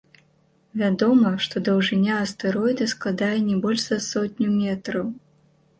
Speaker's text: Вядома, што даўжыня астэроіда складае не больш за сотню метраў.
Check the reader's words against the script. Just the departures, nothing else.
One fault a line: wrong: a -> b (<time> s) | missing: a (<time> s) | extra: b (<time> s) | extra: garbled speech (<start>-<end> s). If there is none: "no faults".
no faults